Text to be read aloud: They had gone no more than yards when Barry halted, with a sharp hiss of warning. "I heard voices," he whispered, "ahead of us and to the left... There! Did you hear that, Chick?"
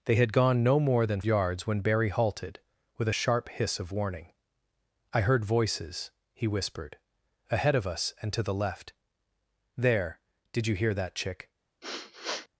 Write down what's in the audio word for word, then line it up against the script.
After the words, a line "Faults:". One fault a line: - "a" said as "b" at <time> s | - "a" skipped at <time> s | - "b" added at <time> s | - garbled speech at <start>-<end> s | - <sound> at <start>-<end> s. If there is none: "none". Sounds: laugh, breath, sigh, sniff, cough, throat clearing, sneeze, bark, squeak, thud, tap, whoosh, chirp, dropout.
They had gone no more than yards when Barry halted, with a sharp hiss of warning. "I heard voices," he whispered, "ahead of us and to the left... There! Did you hear that, Chick?"
Faults:
- sniff at 11.8-12.5 s